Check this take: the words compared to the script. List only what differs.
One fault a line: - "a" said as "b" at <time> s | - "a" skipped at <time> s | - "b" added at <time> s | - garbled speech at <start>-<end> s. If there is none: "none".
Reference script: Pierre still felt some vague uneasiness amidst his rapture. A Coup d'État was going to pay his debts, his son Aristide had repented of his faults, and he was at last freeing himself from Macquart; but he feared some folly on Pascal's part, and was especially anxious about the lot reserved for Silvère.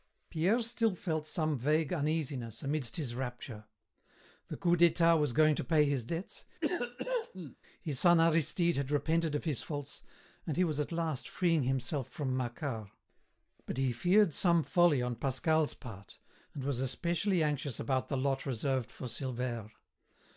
- "A" said as "The" at 4.5 s